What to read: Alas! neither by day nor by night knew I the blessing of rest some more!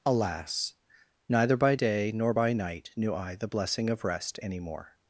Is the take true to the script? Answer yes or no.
no